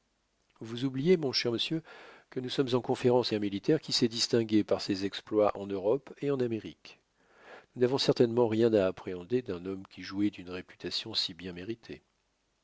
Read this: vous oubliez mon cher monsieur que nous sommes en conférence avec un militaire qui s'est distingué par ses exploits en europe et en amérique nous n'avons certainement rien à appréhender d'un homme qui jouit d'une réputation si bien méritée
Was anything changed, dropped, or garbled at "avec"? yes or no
yes